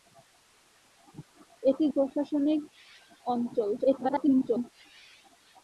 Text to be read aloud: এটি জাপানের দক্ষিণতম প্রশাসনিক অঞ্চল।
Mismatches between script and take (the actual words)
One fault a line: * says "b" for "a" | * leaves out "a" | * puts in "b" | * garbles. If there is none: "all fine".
* leaves out "জাপানের দক্ষিণতম"
* garbles